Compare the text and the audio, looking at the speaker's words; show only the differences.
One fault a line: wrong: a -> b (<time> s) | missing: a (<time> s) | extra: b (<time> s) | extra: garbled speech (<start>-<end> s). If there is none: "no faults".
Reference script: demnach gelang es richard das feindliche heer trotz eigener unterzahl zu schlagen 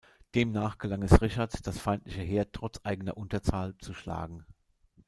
no faults